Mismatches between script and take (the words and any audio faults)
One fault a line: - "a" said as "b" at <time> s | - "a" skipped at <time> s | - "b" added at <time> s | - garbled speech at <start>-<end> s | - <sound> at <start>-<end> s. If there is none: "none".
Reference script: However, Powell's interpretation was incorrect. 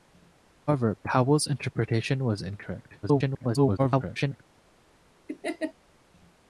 - garbled speech at 3.0-4.4 s
- laugh at 5.3-5.7 s